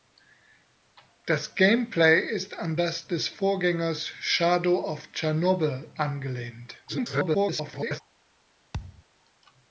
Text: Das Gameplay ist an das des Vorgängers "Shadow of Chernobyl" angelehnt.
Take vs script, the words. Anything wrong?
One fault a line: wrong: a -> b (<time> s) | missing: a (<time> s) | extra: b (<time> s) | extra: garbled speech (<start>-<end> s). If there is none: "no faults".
extra: garbled speech (6.9-8.0 s)